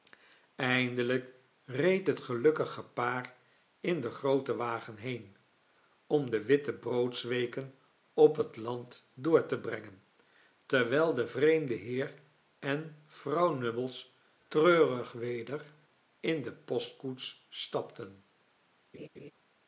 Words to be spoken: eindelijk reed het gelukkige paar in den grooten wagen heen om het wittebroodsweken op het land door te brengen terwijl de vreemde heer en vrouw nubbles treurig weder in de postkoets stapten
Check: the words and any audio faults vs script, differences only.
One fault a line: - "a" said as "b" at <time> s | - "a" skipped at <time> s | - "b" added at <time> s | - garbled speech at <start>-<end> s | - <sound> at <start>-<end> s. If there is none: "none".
- "het" said as "de" at 6.3 s
- laugh at 18.9-19.3 s